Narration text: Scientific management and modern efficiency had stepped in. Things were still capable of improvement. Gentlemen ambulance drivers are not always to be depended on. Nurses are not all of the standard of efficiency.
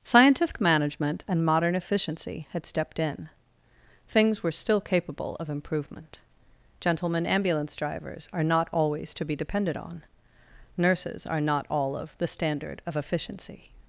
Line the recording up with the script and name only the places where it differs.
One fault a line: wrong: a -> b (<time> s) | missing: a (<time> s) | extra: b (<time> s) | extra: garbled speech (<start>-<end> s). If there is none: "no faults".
no faults